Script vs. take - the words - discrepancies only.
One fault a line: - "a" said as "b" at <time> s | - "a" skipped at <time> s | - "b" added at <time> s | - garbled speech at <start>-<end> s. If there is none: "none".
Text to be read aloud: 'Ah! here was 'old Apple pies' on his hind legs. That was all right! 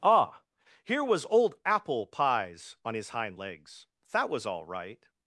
none